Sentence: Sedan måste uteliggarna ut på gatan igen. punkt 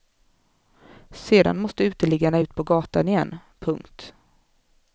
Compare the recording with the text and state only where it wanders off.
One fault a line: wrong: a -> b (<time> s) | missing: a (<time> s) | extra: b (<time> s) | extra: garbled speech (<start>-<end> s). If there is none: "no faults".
no faults